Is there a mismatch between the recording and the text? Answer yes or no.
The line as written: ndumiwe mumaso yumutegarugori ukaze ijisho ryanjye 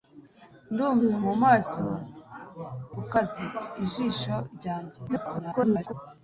yes